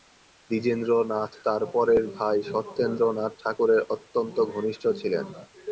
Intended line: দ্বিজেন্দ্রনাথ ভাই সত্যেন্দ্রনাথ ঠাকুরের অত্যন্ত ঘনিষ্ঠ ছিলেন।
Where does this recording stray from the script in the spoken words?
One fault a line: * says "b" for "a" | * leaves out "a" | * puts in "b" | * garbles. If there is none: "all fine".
* puts in "তার পরের"